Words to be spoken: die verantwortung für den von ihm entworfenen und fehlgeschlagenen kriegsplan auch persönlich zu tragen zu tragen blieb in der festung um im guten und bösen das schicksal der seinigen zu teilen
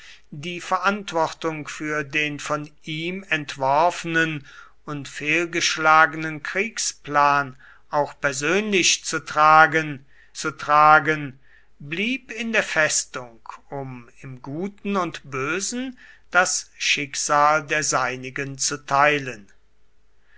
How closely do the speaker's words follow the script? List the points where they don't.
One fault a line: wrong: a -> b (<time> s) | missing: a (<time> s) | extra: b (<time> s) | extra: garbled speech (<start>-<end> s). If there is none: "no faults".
no faults